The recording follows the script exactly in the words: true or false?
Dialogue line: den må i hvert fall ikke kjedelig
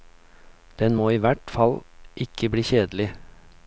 false